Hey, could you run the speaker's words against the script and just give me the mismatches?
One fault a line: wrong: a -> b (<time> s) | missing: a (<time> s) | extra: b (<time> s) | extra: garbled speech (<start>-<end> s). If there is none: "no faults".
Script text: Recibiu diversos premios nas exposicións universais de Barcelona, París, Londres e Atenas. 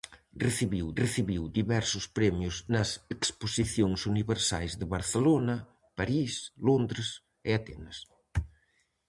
extra: recibiu (1.0 s)